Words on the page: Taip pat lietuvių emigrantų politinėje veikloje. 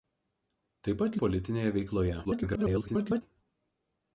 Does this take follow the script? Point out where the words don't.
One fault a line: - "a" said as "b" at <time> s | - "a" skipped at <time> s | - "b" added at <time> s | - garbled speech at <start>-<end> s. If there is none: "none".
- "lietuvių emigrantų" skipped at 1.2 s
- garbled speech at 2.2-3.2 s